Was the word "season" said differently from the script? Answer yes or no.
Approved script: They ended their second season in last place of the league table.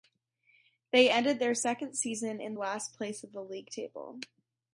no